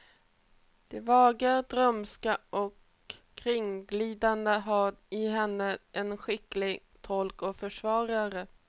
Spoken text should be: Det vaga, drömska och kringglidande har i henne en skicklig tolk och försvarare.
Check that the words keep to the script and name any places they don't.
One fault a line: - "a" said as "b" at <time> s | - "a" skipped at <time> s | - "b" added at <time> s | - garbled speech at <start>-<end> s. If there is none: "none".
none